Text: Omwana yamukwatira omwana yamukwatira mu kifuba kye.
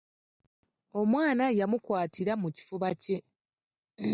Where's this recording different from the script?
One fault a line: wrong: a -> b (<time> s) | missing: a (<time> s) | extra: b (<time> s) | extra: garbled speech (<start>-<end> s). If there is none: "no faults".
missing: omwana yamukwatira (2.3 s)